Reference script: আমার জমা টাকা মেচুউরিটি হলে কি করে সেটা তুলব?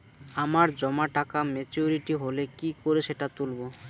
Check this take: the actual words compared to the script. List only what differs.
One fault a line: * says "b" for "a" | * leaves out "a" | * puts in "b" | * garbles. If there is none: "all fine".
all fine